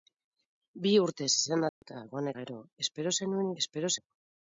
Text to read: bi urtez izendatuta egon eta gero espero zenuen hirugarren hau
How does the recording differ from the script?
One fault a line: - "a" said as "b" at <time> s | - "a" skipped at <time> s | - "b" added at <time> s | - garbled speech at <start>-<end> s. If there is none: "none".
- "eta" skipped at 2.3 s
- "hirugarren" said as "espero" at 3.6 s